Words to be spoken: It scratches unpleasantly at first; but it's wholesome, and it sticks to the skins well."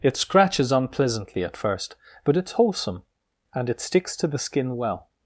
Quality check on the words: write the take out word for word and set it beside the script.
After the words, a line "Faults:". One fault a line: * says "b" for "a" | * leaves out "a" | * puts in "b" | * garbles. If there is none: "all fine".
It scratches unpleasantly at first; but it's wholesome, and it sticks to the skin well."
Faults:
* says "skin" for "skins"